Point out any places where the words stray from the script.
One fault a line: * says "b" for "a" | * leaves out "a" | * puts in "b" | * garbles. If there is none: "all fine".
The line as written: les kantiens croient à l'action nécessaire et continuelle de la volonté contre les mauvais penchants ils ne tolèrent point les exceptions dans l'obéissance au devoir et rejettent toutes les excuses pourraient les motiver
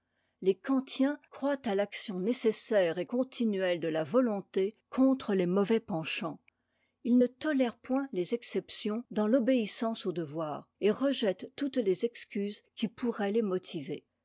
* puts in "qui"